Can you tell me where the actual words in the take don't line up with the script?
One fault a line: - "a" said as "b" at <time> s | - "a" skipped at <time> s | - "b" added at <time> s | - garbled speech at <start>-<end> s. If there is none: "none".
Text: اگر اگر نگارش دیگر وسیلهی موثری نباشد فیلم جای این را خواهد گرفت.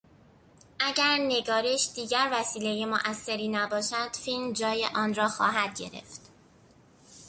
- "اگر" skipped at 1.2 s
- "این" said as "آن" at 5.0 s